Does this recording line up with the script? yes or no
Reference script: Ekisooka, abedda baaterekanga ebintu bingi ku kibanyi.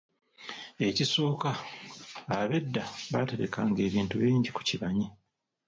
yes